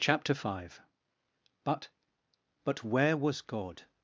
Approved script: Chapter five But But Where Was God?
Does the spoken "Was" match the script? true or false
true